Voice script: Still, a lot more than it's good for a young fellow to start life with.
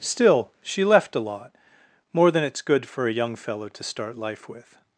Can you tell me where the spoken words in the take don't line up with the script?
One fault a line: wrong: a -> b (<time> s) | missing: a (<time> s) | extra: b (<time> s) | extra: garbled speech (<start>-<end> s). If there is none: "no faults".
extra: she left (0.6 s)